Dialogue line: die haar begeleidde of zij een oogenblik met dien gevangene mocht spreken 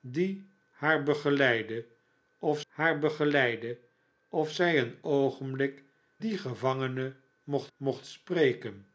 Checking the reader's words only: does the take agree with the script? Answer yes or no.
no